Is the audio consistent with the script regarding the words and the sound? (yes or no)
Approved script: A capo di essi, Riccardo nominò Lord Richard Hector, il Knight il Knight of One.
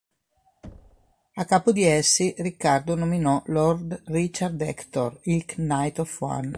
no